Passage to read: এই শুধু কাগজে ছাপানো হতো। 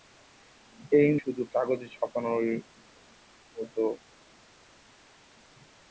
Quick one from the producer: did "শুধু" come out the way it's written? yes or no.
yes